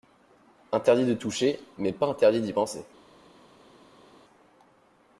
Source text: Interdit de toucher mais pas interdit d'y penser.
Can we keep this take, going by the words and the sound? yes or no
yes